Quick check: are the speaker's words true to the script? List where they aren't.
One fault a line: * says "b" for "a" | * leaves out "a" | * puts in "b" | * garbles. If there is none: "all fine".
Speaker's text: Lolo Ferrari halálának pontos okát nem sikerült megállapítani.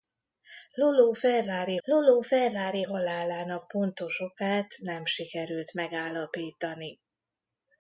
* puts in "lolo Ferrari"